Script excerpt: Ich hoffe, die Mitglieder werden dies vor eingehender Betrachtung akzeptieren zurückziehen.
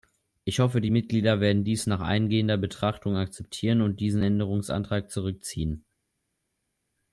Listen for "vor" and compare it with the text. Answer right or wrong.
wrong